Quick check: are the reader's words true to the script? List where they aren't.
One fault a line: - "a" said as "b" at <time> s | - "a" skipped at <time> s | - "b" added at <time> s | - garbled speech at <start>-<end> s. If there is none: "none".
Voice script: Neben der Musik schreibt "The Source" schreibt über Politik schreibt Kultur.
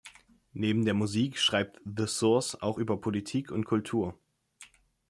- "schreibt" said as "auch" at 2.6 s
- "schreibt" said as "und" at 3.5 s